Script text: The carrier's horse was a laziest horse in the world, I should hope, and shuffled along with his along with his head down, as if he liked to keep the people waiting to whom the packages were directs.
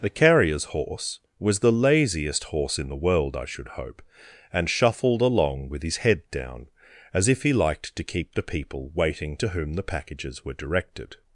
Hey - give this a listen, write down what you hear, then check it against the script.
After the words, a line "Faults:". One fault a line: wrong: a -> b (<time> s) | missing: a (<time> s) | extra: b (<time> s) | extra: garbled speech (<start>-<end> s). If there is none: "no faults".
The carrier's horse was the laziest horse in the world, I should hope, and shuffled along with his head down, as if he liked to keep the people waiting to whom the packages were directed.
Faults:
wrong: a -> the (1.6 s)
missing: along with his (6.0 s)
wrong: directs -> directed (10.5 s)